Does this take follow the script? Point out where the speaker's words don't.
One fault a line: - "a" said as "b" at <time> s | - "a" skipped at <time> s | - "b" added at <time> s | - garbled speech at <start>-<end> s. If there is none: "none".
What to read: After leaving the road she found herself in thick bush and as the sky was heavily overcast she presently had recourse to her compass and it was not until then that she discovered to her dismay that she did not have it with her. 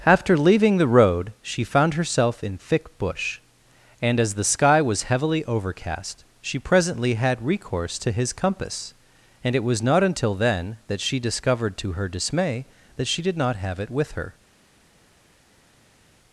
- "her" said as "his" at 8.1 s